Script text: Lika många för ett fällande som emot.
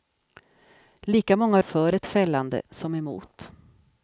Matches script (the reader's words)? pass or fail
pass